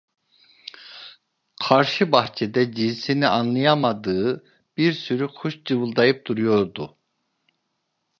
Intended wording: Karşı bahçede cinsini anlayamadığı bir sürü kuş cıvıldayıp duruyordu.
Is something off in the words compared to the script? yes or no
no